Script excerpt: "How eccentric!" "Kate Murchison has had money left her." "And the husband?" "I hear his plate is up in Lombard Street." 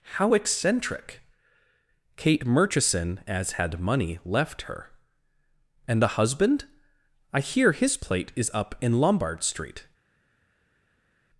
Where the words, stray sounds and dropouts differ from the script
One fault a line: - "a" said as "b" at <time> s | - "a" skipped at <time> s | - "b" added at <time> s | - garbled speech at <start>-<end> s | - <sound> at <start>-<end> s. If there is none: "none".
- "has" said as "as" at 3.3 s